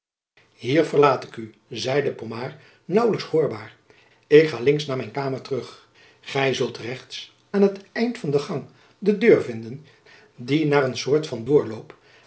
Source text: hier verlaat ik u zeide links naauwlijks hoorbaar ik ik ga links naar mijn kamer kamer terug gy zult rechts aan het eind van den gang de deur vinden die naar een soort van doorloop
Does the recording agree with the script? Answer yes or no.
no